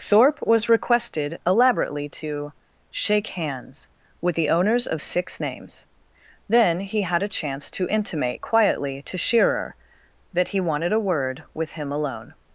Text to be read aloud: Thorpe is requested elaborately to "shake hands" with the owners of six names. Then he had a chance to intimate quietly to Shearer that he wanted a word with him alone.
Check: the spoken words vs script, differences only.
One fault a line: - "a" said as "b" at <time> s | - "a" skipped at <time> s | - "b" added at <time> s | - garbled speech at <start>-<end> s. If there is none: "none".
- "is" said as "was" at 0.4 s